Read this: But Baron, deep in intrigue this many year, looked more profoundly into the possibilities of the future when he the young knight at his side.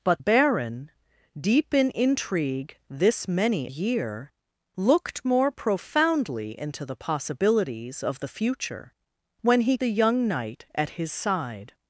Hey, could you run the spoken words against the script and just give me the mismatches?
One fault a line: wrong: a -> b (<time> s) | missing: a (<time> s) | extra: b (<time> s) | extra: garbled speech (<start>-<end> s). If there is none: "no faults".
no faults